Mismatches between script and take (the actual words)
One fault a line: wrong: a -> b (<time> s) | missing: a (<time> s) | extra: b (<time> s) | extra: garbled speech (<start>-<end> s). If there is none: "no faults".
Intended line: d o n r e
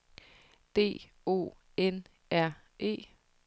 no faults